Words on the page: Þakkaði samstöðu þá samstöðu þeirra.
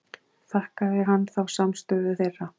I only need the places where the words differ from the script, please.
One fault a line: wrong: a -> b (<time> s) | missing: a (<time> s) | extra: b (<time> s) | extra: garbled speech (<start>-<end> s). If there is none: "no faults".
wrong: samstöðu -> hann (1.1 s)